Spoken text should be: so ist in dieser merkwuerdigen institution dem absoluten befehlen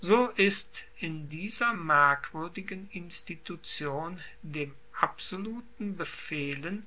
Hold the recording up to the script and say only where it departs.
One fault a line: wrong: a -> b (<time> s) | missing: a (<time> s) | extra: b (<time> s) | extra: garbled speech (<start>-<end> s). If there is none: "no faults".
no faults